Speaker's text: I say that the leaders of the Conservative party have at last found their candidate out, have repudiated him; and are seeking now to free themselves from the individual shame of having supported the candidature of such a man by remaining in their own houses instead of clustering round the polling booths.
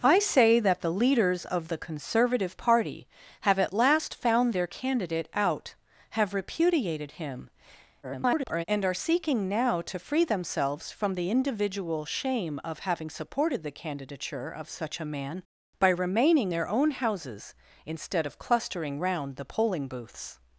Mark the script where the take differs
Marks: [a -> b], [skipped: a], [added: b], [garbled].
I say that the leaders of the Conservative party have at last found their candidate out, have repudiated him; [garbled] and are seeking now to free themselves from the individual shame of having supported the candidature of such a man by remaining [skipped: in] their own houses instead of clustering round the polling booths.